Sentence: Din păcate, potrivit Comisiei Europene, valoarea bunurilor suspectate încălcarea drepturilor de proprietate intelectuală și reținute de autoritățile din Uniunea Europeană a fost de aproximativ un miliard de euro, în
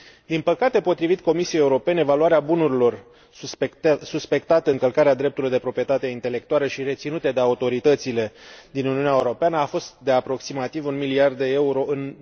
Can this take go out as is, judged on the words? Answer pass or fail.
pass